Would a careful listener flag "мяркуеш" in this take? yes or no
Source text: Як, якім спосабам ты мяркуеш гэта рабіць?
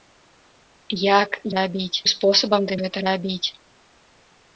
yes